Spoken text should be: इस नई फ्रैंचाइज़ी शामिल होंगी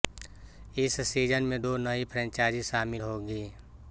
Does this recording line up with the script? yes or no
no